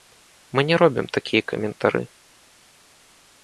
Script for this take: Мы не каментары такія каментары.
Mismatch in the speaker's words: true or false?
true